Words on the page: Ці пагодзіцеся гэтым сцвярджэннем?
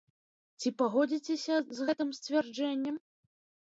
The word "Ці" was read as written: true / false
true